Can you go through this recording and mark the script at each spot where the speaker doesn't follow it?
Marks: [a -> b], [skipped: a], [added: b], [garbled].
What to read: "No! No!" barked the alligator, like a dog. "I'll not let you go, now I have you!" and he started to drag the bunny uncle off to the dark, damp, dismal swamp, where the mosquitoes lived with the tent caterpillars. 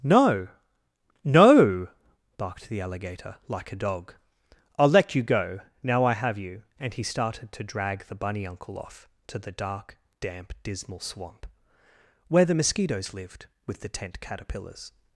"No! No!" barked the alligator, like a dog. "I'll [skipped: not] let you go, now I have you!" and he started to drag the bunny uncle off to the dark, damp, dismal swamp, where the mosquitoes lived with the tent caterpillars.